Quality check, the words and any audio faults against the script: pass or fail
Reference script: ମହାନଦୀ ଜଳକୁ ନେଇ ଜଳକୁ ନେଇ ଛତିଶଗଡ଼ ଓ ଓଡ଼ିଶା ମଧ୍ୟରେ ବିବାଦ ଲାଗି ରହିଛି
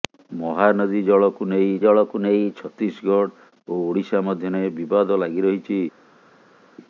pass